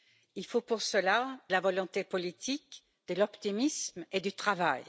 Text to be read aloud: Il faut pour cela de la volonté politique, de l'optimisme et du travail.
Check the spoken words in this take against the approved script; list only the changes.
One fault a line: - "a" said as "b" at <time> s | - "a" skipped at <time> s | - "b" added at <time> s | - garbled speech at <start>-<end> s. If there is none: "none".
- "de" skipped at 1.4 s